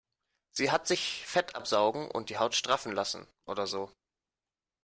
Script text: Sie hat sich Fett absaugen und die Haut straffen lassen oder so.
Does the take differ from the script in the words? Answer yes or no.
no